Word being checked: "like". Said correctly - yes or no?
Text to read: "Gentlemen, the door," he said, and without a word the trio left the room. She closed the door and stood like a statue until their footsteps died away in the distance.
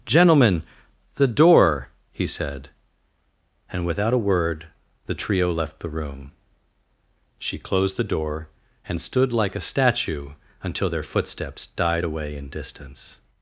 yes